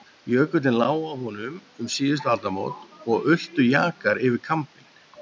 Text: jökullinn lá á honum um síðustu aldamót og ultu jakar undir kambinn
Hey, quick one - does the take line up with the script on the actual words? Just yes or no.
no